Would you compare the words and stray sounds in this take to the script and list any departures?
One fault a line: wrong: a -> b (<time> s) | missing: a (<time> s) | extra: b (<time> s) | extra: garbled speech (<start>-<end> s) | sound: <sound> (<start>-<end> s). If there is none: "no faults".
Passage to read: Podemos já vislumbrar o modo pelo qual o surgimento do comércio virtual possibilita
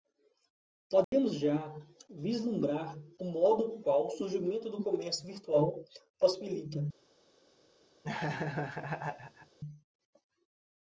sound: dropout (1.0-1.1 s)
missing: pelo (3.8 s)
sound: laugh (8.0-9.6 s)